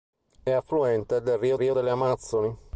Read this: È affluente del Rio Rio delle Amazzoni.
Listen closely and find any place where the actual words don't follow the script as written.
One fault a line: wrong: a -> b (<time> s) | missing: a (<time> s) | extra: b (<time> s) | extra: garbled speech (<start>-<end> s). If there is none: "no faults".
no faults